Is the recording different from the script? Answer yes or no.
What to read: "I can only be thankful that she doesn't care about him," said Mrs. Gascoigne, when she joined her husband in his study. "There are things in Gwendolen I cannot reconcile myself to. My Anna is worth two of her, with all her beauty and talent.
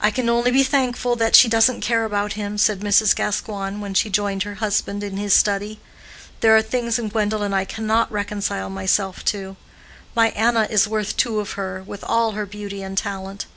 no